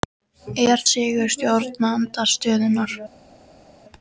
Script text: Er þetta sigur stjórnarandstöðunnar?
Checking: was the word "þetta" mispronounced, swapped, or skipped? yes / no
yes